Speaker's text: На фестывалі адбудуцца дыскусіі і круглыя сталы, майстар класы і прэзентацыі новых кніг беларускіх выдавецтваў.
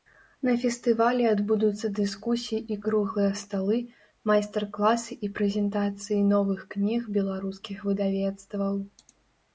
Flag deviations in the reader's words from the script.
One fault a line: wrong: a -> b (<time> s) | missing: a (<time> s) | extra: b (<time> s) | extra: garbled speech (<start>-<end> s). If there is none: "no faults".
no faults